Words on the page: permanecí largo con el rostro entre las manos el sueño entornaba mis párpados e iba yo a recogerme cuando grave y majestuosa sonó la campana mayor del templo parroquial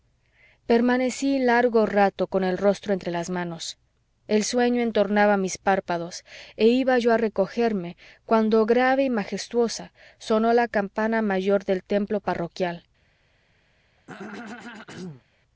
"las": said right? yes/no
yes